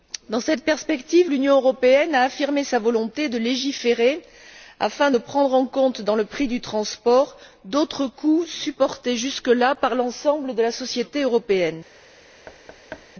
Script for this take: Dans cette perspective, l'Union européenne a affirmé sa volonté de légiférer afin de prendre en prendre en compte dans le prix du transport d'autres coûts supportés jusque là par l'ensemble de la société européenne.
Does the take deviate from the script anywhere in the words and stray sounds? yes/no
yes